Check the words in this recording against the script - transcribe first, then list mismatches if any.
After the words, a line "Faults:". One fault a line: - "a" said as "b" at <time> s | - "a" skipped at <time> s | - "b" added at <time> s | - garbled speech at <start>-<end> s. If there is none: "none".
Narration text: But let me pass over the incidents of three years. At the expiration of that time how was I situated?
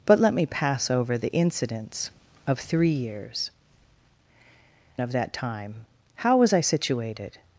But let me pass over the incidents of three years. Of that time how was I situated?
Faults:
- "At the expiration" skipped at 3.5 s